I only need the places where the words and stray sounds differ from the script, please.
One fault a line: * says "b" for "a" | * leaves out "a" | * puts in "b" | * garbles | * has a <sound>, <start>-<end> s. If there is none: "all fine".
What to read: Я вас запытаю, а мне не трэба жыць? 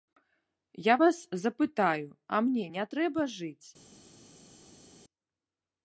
all fine